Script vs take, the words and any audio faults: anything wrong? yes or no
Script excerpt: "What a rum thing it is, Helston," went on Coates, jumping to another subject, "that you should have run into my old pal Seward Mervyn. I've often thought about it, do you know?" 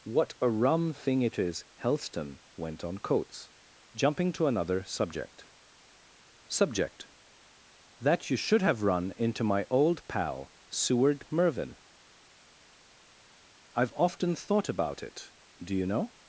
yes